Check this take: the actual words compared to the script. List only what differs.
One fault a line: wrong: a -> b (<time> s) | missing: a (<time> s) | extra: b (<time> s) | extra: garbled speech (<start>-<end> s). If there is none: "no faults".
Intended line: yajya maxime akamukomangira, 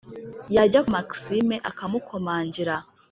no faults